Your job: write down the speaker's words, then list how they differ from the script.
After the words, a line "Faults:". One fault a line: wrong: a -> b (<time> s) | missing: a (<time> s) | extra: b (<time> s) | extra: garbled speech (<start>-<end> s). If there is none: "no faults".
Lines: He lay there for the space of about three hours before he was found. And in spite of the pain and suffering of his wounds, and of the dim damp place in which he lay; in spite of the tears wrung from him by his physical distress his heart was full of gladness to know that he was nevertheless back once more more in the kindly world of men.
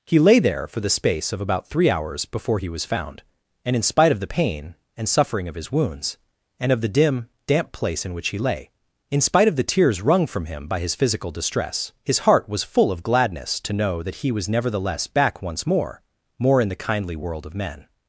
He lay there for the space of about three hours before he was found. And in spite of the pain and suffering of his wounds, and of the dim damp place in which he lay; in spite of the tears wrung from him by his physical distress his heart was full of gladness to know that he was nevertheless back once more more in the kindly world of men.
Faults:
no faults